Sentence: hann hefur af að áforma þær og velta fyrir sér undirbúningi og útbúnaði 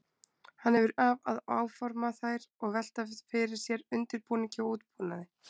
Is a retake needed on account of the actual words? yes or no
no